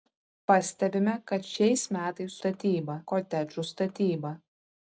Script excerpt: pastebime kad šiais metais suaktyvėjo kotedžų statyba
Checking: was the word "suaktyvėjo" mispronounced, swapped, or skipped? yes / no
yes